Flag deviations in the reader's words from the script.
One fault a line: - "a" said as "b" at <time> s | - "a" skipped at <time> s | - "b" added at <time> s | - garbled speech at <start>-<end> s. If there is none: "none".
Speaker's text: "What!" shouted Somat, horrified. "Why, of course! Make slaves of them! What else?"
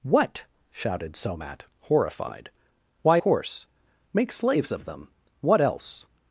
- "of" skipped at 3.2 s